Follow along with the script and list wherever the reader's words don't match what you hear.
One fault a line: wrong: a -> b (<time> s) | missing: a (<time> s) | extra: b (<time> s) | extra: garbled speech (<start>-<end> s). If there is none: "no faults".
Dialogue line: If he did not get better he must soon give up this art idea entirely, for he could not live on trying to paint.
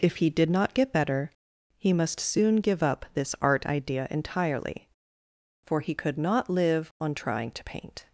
no faults